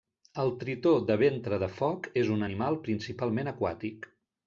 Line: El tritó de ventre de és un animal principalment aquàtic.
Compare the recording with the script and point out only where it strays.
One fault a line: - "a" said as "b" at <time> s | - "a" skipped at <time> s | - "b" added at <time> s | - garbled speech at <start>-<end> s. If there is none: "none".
- "foc" added at 1.8 s